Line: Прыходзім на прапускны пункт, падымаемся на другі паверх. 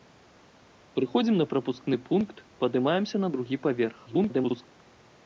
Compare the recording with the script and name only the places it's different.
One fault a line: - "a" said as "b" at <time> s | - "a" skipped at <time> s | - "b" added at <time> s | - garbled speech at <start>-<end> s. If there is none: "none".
- garbled speech at 4.1-4.7 s